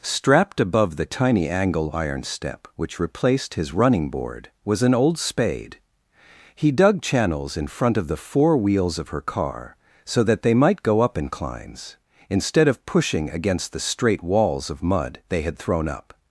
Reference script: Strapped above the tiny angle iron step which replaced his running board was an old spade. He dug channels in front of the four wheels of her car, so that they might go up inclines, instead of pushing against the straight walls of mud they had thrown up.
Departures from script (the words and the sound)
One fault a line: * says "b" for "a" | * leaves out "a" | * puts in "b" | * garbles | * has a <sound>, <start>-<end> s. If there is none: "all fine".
all fine